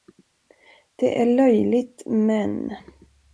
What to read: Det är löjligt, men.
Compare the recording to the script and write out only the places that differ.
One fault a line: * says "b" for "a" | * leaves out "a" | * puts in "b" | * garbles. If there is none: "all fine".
all fine